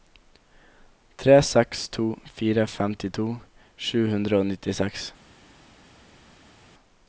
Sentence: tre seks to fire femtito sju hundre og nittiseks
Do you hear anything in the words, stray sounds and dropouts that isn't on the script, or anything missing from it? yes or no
no